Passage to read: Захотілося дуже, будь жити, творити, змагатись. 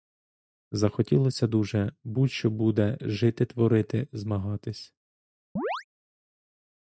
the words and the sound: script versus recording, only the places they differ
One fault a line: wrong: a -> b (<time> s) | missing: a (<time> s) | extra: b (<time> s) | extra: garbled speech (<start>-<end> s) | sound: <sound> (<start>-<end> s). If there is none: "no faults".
extra: що буде (2.3 s)
sound: chirp (5.6-5.8 s)